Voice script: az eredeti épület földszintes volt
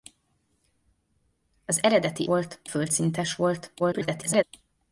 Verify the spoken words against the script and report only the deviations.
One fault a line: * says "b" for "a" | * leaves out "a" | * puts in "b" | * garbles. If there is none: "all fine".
* says "volt" for "épület"
* garbles